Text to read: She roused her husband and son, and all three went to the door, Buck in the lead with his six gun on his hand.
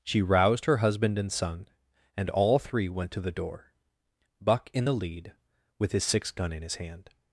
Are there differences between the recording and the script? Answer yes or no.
yes